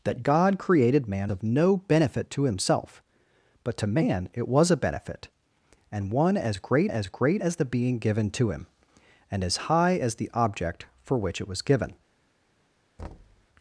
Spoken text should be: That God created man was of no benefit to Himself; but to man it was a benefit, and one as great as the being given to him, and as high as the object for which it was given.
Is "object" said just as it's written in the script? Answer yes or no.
yes